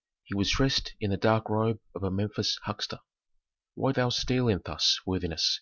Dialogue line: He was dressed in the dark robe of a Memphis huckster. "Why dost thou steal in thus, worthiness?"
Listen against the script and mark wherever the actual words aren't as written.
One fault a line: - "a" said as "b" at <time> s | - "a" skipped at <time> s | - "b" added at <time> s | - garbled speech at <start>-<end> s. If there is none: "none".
- "dost" skipped at 3.9 s